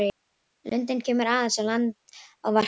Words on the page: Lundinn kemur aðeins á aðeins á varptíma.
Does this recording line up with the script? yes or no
no